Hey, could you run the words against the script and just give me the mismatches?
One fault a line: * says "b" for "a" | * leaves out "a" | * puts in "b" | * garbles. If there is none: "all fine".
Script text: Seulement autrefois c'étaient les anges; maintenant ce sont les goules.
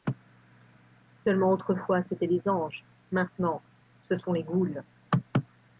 all fine